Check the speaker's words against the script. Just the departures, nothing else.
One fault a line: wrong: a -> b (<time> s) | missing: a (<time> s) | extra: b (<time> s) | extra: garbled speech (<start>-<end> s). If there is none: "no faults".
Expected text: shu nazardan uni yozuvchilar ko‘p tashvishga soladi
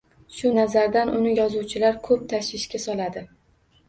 no faults